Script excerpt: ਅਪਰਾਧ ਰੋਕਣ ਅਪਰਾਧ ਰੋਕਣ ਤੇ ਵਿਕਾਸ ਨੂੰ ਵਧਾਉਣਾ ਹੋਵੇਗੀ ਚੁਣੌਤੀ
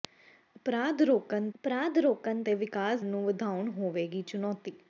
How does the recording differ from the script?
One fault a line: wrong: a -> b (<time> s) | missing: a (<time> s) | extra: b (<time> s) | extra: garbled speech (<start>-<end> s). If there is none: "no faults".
no faults